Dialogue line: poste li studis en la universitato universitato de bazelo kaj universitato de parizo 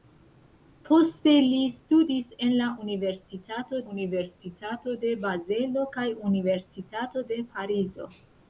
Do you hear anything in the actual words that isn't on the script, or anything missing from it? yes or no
no